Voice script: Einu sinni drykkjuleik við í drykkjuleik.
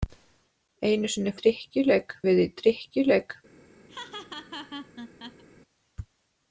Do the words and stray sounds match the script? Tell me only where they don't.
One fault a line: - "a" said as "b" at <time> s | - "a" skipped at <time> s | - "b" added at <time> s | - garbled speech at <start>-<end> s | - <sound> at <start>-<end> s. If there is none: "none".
- laugh at 3.9-5.4 s